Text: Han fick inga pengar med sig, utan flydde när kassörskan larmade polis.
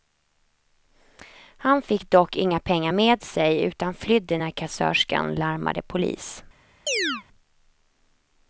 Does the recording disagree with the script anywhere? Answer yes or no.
yes